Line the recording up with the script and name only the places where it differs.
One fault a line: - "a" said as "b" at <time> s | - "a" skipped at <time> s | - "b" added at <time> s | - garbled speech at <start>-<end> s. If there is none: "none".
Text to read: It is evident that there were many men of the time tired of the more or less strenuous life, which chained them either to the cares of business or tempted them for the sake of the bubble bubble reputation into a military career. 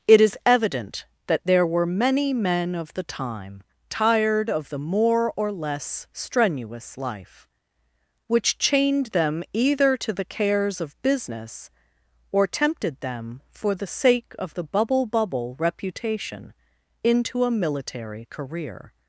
none